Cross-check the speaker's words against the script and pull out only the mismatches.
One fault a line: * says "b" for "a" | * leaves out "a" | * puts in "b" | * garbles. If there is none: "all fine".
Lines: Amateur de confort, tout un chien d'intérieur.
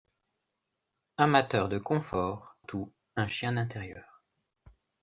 all fine